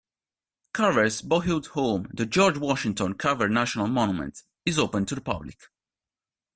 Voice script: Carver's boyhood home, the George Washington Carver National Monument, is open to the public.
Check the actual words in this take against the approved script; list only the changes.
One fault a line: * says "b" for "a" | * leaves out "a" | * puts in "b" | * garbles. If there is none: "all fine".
all fine